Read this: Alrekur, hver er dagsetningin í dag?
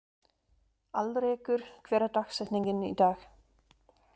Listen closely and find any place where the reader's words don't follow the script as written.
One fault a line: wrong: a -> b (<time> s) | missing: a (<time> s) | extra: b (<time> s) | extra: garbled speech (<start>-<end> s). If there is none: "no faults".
no faults